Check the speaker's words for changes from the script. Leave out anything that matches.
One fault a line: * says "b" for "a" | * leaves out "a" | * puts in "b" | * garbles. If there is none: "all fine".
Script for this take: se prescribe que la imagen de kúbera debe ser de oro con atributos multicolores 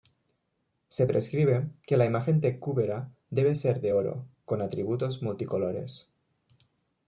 all fine